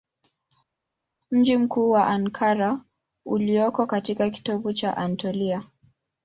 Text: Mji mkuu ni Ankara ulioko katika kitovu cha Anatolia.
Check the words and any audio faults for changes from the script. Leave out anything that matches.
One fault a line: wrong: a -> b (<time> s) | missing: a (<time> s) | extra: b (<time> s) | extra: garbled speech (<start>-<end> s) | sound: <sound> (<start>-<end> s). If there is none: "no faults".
no faults